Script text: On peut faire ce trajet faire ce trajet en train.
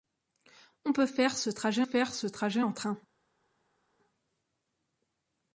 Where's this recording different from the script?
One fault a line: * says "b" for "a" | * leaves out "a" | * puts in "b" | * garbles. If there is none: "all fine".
all fine